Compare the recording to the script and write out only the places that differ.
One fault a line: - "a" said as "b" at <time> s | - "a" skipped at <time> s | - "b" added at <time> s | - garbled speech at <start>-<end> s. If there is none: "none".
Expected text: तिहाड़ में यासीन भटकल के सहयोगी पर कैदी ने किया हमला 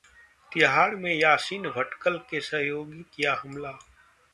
- "पर कैदी ने" skipped at 3.0 s